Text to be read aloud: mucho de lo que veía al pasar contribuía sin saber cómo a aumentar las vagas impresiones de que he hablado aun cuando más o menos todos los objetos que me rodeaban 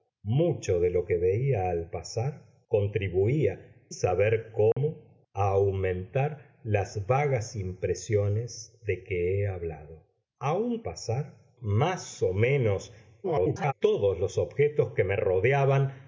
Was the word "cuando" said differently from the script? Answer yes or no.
yes